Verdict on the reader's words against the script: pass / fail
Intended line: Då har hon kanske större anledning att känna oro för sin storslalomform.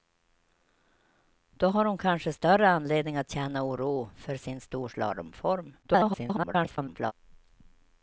fail